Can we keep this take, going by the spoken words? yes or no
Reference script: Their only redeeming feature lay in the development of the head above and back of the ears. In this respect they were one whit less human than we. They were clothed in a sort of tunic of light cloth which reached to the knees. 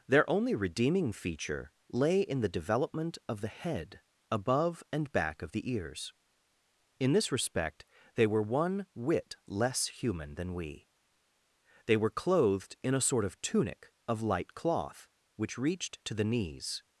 yes